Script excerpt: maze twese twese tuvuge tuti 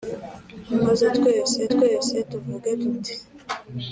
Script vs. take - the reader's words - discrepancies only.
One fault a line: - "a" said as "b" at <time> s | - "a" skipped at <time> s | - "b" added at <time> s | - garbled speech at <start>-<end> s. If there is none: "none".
none